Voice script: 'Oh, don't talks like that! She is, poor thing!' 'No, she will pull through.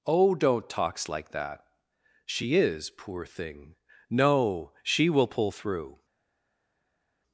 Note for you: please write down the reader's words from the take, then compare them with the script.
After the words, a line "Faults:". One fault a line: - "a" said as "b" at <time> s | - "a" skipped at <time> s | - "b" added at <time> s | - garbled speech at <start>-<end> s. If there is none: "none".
'Oh, don't talks like that! She is, poor thing!' 'No, she will pull through.
Faults:
none